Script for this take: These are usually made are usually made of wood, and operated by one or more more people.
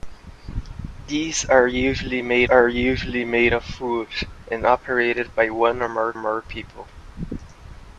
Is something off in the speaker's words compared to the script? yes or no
no